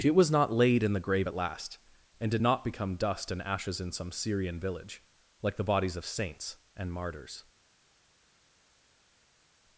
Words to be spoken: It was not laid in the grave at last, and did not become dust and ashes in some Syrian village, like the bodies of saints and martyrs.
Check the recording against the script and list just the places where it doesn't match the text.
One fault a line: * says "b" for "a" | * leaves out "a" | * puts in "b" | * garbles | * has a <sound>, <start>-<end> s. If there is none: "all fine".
all fine